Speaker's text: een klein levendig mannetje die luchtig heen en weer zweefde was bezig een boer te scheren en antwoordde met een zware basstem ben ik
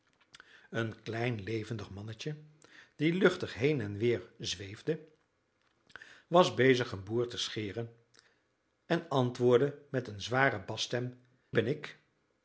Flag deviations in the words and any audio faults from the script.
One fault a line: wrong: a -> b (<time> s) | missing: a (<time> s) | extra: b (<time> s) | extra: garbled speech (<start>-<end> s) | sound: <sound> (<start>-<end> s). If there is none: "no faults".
no faults